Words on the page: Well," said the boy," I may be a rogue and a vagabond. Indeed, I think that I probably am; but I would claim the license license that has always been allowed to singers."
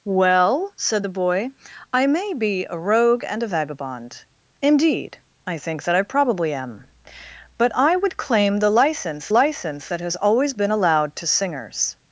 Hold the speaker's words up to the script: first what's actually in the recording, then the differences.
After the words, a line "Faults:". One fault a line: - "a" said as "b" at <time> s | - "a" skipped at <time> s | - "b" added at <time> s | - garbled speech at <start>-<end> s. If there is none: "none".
Well," said the boy," I may be a rogue and a vagabond. Indeed, I think that I probably am; but I would claim the license license that has always been allowed to singers."
Faults:
none